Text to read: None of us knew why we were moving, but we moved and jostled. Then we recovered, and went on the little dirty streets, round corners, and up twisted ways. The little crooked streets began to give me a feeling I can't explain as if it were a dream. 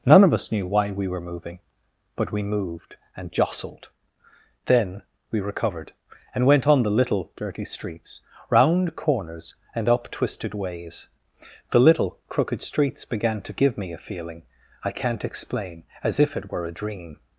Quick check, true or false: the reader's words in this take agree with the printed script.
true